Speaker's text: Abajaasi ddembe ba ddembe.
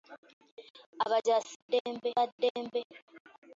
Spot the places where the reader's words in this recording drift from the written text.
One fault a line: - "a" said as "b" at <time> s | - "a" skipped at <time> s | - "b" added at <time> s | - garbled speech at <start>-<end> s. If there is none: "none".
none